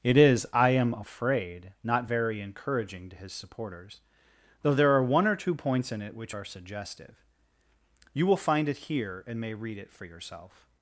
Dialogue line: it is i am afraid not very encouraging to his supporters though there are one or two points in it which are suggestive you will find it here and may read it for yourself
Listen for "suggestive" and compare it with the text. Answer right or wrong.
right